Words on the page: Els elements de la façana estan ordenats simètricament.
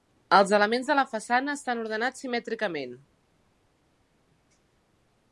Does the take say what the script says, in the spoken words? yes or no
yes